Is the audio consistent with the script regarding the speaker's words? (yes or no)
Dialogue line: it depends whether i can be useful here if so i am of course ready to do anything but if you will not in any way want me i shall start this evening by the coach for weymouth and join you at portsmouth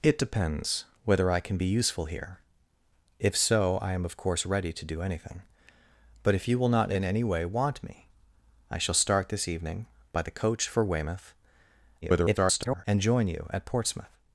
no